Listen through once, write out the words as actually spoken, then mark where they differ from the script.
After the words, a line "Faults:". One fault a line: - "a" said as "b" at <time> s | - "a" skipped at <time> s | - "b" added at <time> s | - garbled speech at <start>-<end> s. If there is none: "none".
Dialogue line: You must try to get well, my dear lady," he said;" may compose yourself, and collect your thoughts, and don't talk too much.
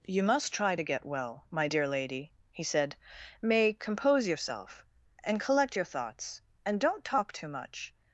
You must try to get well, my dear lady," he said;" may compose yourself, and collect your thoughts, and don't talk too much.
Faults:
none